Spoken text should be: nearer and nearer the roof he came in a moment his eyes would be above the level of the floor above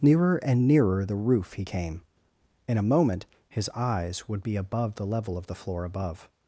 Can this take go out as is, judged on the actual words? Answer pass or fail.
pass